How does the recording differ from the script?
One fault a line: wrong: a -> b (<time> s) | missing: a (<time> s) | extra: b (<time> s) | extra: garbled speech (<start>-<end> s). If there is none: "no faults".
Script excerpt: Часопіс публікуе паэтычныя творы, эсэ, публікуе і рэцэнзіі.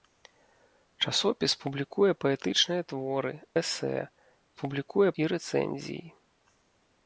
no faults